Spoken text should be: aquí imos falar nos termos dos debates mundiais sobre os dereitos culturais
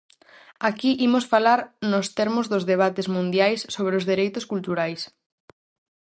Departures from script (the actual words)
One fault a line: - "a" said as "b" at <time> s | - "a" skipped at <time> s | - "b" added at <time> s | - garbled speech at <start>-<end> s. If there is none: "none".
none